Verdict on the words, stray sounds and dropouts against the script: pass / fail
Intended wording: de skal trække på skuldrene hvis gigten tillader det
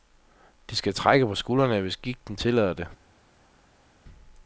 pass